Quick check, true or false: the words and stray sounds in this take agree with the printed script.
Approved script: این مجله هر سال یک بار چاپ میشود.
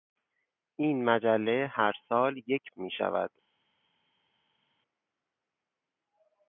false